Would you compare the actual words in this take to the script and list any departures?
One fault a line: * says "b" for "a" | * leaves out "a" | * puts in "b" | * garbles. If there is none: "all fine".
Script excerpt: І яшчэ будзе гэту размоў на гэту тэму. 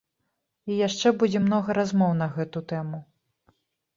* says "многа" for "гэту"